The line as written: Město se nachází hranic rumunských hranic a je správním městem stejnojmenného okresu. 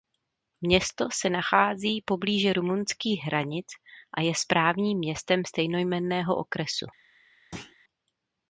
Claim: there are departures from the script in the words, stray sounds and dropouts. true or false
true